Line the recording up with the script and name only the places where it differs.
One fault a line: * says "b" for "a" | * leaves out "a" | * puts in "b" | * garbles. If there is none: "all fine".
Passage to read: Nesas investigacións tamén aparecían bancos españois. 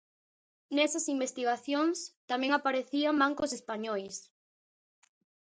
all fine